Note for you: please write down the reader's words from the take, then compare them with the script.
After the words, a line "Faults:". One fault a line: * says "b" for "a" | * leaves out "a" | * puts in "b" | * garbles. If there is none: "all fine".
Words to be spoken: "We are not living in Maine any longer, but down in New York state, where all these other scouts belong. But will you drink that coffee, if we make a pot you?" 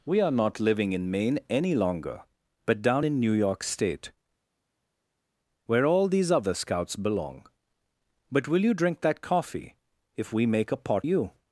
"We are not living in Maine any longer, but down in New York state, where all these other scouts belong. But will you drink that coffee, if we make a pot you?"
Faults:
all fine